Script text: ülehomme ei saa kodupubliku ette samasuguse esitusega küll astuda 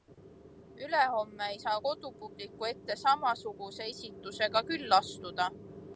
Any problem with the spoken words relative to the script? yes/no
no